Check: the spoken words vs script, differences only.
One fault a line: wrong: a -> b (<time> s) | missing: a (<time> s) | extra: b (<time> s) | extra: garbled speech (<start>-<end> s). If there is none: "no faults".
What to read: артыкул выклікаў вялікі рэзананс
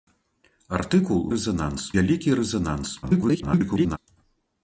wrong: выклікаў -> рэзананс (1.4 s)
extra: garbled speech (3.0-4.0 s)